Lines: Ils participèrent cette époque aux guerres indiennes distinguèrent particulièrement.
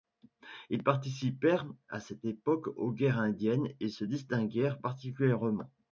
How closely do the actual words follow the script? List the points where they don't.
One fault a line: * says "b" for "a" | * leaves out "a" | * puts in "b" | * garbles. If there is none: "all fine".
* puts in "à"
* puts in "et se"